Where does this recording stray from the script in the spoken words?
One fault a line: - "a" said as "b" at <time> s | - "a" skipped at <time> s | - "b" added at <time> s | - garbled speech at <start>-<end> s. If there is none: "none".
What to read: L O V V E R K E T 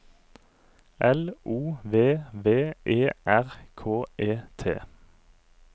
none